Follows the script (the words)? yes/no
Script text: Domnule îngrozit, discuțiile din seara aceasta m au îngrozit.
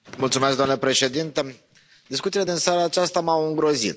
no